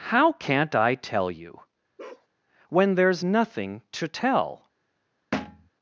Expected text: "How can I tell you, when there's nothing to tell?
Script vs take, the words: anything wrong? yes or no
yes